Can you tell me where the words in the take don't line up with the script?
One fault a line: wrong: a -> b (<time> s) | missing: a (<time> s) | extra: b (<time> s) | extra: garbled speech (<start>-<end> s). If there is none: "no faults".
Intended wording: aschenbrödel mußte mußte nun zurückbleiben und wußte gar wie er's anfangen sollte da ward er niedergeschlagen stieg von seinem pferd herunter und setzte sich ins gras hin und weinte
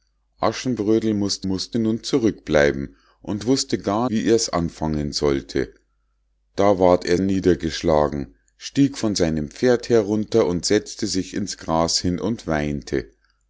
no faults